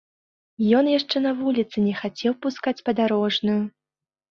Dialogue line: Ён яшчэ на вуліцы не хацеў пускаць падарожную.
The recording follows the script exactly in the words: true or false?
true